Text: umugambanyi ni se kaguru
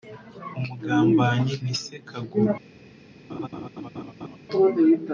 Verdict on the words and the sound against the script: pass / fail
fail